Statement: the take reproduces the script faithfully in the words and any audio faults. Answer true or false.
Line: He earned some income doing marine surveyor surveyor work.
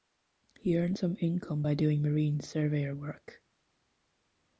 false